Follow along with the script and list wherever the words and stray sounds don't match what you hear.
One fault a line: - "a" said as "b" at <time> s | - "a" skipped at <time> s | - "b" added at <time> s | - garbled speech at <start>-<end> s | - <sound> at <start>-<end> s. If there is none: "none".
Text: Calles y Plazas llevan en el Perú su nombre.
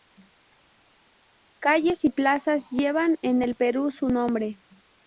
none